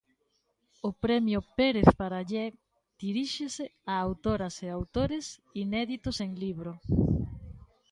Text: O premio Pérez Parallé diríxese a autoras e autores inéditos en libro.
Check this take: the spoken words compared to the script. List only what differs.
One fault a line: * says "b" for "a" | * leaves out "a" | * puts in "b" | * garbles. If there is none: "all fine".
all fine